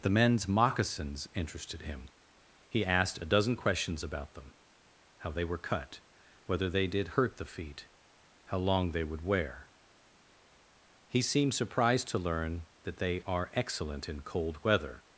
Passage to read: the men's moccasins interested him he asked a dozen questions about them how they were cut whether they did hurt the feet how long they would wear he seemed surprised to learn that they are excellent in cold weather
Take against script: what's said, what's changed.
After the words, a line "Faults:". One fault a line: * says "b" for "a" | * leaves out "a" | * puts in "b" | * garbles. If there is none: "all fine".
the men's moccasins interested him he asked a dozen questions about them how they were cut whether they did hurt the feet how long they would wear he seemed surprised to learn that they are excellent in cold weather
Faults:
all fine